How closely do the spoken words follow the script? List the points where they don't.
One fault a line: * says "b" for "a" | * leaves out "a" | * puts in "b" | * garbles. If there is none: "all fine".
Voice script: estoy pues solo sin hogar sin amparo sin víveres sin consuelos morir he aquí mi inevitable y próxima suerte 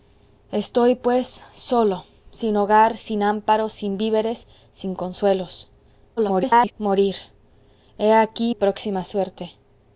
* garbles
* leaves out "mi inevitable"